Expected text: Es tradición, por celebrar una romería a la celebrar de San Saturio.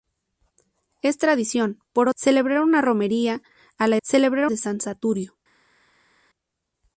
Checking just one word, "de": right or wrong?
right